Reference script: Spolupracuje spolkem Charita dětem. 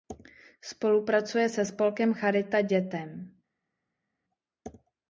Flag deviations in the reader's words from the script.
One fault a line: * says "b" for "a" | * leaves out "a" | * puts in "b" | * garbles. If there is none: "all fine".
* puts in "se"